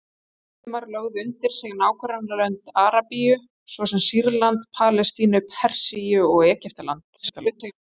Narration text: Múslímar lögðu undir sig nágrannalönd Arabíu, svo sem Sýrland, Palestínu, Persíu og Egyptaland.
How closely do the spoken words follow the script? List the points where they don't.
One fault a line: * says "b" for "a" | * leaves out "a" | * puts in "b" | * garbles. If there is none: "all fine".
* garbles